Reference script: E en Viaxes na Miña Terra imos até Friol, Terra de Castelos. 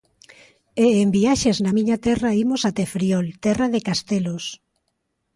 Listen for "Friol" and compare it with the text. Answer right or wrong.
right